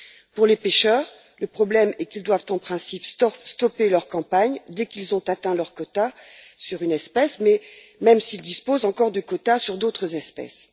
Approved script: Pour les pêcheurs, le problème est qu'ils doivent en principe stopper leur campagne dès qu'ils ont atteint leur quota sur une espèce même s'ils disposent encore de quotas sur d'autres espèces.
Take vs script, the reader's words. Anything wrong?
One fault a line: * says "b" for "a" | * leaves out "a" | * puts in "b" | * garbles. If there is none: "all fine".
all fine